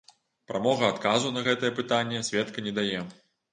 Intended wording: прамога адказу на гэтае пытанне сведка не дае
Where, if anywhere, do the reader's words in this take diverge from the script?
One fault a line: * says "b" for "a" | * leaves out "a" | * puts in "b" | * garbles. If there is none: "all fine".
all fine